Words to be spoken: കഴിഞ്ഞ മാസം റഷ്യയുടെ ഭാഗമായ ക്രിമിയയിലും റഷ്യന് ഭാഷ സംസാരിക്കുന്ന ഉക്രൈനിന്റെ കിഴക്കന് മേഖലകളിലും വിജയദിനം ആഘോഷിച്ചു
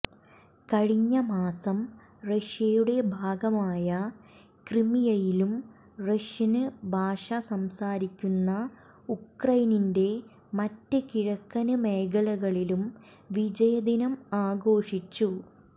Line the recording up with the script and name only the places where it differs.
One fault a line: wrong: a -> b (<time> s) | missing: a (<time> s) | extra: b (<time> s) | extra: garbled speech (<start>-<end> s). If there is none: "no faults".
extra: മറ്റ് (10.5 s)